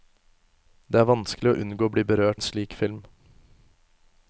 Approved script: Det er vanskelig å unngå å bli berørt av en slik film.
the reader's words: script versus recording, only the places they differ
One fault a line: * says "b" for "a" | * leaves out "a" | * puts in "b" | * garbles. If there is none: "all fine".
* leaves out "av"